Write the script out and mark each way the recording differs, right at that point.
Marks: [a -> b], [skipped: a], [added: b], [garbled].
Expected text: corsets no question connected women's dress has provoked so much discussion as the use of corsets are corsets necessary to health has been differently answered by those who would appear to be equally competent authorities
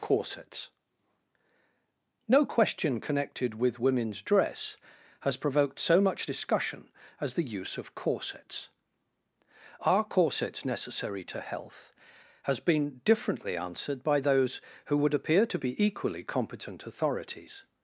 corsets no question connected [added: with] women's dress has provoked so much discussion as the use of corsets are corsets necessary to health has been differently answered by those who would appear to be equally competent authorities